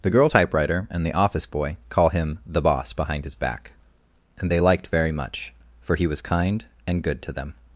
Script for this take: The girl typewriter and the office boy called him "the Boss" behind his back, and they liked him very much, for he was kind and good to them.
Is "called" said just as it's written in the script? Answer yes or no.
no